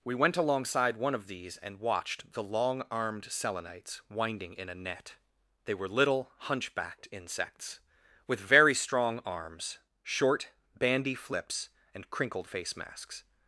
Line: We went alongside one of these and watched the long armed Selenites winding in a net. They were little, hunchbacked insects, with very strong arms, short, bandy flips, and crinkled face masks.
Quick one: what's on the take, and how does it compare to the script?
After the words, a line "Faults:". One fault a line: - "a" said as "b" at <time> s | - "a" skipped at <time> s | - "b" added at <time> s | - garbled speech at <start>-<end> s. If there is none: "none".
We went alongside one of these and watched the long armed Selenites winding in a net. They were little, hunchbacked insects, with very strong arms, short, bandy flips, and crinkled face masks.
Faults:
none